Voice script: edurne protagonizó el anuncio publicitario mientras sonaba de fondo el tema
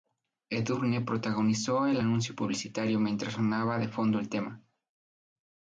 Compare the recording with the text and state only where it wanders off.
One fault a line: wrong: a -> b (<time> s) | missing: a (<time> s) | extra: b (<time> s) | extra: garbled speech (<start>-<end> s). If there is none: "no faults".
no faults